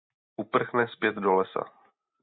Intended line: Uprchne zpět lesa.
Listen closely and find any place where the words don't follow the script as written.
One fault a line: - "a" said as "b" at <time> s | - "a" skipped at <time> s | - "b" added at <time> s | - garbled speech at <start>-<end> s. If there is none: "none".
- "do" added at 1.1 s